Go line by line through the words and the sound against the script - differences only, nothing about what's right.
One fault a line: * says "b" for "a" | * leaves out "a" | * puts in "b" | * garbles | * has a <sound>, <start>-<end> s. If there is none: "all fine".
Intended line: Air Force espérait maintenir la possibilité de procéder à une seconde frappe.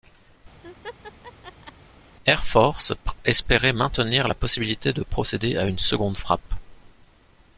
* has a laugh, 0.6-1.7 s